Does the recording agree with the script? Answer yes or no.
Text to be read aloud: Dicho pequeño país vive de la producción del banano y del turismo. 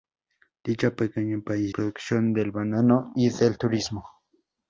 no